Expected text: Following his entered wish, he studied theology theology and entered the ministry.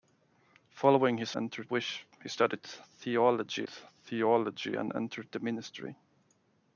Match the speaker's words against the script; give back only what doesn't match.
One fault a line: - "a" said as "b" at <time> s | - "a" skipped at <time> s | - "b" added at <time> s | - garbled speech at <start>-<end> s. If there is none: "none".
none